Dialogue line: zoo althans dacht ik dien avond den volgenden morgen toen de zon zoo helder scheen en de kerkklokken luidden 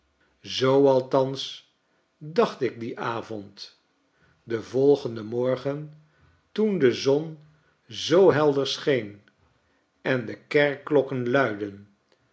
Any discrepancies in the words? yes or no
no